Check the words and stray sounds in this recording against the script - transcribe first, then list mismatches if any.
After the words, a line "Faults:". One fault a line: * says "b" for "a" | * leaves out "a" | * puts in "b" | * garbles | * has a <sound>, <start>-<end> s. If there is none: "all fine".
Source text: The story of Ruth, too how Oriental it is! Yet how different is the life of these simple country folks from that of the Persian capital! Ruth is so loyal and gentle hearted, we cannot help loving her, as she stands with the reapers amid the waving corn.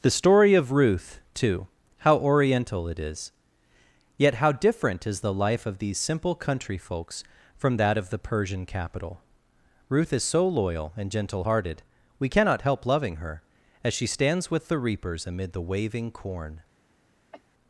The story of Ruth, too how Oriental it is! Yet how different is the life of these simple country folks from that of the Persian capital! Ruth is so loyal and gentle hearted, we cannot help loving her, as she stands with the reapers amid the waving corn.
Faults:
* has a cough, 17.3-17.4 s